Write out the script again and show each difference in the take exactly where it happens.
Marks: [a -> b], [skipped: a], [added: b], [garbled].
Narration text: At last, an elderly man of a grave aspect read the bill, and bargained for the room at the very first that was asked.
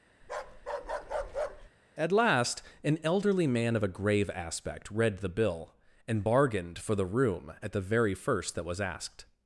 At last, an elderly man of a grave aspect read the bill, and bargained for the room at the very first that was asked.